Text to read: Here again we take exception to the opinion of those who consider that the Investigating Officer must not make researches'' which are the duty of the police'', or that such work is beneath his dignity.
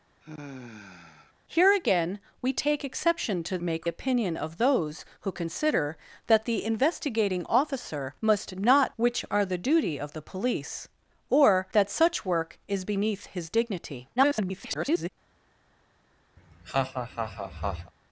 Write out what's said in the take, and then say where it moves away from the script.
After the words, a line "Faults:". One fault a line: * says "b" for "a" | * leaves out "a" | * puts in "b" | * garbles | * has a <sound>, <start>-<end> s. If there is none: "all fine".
Here again we take exception to make opinion of those who consider that the Investigating Officer must not'' which are the duty of the police'', or that such work is beneath his dignity. [garbled]
Faults:
* has a sigh, 0.2-1.3 s
* says "make" for "the"
* leaves out "make researches"
* garbles
* has a laugh, 16.4-17.9 s